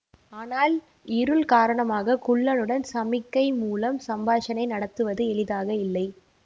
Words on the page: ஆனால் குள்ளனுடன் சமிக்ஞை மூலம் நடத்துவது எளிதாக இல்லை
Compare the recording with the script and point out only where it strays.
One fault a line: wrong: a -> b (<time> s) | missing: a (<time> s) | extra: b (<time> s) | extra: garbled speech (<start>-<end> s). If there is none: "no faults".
extra: இருள் காரணமாக (1.1 s)
extra: சம்பாஷணை (4.1 s)